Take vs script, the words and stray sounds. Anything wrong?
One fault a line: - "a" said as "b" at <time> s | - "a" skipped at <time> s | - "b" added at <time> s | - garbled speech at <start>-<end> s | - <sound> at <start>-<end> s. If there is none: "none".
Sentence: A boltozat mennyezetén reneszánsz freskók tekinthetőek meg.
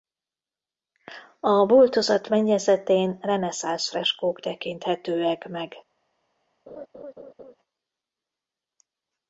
- laugh at 6.7-7.6 s